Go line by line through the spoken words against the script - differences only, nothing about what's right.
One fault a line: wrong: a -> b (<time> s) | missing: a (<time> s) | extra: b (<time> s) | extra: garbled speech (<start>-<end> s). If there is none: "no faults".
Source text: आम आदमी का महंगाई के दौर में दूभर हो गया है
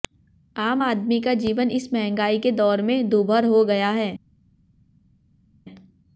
extra: जीवन इस (1.3 s)